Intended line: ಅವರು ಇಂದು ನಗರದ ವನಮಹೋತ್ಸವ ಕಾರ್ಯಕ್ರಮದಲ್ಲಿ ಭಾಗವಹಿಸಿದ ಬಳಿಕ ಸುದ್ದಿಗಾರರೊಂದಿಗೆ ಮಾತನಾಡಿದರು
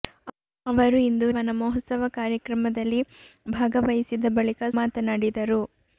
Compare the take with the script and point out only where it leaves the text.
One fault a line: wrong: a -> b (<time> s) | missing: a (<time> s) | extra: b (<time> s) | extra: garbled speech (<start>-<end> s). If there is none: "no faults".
missing: ನಗರದ (1.3 s)
missing: ಸುದ್ದಿಗಾರರೊಂದಿಗೆ (4.6 s)